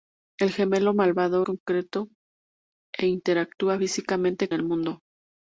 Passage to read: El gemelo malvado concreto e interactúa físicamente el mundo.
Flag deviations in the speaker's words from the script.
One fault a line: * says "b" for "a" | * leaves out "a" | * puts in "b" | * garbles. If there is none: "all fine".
all fine